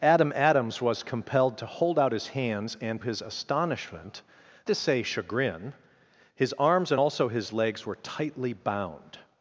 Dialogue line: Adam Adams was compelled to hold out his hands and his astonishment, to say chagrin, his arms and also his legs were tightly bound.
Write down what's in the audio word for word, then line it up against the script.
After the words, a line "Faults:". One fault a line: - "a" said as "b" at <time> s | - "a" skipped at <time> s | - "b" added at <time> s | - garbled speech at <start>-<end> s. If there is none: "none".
Adam Adams was compelled to hold out his hands and his astonishment, to say chagrin, his arms and also his legs were tightly bound.
Faults:
none